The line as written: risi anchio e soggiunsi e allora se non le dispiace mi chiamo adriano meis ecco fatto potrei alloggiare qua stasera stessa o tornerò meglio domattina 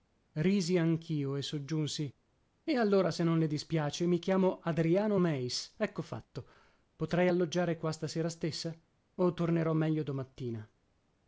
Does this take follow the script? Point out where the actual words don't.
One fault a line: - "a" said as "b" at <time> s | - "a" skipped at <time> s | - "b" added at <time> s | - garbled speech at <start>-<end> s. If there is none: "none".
none